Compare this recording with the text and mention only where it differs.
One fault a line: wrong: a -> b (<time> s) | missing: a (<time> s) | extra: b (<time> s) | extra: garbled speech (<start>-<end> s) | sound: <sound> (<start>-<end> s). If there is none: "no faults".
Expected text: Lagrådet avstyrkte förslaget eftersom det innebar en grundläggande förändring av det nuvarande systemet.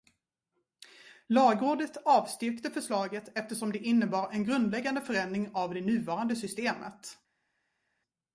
no faults